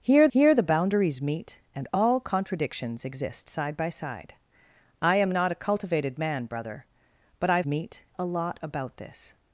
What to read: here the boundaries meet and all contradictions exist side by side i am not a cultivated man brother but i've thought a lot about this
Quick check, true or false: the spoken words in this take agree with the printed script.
false